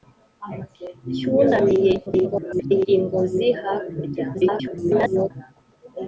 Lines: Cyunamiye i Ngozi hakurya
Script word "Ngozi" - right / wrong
right